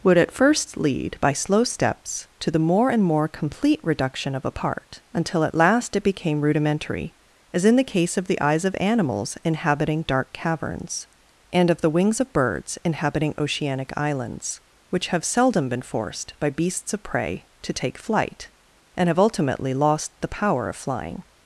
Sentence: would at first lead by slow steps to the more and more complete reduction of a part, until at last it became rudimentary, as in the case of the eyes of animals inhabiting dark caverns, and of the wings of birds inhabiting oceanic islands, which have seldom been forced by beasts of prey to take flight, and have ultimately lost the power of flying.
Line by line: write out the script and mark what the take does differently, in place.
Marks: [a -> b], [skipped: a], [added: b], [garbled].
would at first lead by slow steps to the more and more complete reduction of a part, until at last it became rudimentary, as in the case of the eyes of animals inhabiting dark caverns, and of the wings of birds inhabiting oceanic islands, which have seldom been forced by beasts of prey to take flight, and have ultimately lost the power of flying.